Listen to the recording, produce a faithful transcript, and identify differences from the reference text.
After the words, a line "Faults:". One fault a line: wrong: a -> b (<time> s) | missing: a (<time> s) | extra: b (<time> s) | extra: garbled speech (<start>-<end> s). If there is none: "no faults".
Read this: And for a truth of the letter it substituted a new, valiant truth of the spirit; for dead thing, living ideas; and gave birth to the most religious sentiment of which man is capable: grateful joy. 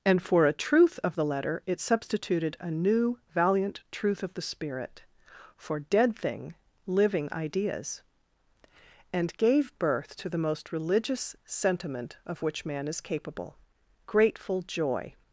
And for a truth of the letter it substituted a new, valiant truth of the spirit; for dead thing, living ideas; and gave birth to the most religious sentiment of which man is capable: grateful joy.
Faults:
no faults